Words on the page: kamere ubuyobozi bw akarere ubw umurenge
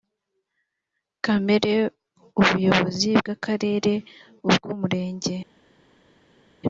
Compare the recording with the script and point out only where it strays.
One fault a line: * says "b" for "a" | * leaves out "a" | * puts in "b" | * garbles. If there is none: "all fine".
all fine